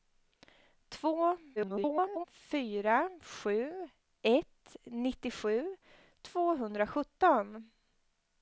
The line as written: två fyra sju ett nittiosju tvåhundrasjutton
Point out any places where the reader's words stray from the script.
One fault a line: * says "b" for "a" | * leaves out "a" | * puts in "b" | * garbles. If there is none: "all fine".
* garbles